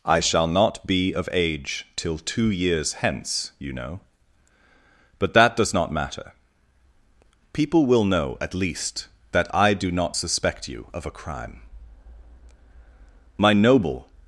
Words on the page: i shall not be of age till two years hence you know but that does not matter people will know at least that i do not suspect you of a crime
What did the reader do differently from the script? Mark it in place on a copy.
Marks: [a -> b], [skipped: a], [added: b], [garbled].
i shall not be of age till two years hence you know but that does not matter people will know at least that i do not suspect you of a crime [added: my noble]